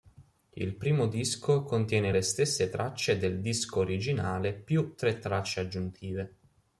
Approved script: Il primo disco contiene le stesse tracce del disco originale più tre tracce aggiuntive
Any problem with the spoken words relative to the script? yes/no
no